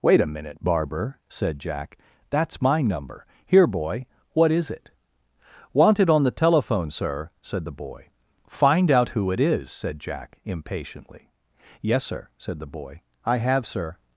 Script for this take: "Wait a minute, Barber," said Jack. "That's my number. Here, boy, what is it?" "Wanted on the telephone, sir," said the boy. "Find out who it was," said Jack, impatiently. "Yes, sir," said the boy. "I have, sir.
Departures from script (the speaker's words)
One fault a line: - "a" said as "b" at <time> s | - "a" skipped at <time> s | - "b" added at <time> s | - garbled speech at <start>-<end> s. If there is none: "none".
- "was" said as "is" at 9.4 s